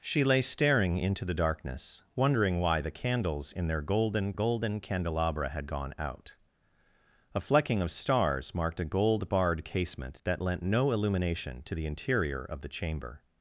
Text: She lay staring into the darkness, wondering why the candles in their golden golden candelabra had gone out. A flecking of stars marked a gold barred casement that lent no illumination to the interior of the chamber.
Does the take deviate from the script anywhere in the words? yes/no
no